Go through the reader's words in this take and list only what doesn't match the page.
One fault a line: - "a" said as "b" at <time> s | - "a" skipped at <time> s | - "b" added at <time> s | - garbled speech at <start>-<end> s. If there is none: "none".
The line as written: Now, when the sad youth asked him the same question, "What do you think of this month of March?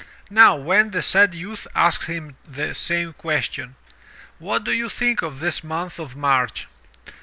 none